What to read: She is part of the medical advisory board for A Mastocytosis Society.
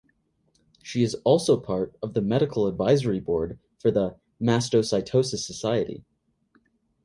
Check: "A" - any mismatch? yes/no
yes